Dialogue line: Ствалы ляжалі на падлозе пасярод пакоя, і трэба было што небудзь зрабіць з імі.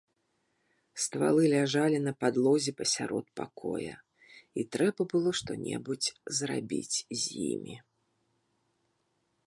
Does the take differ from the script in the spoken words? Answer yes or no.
no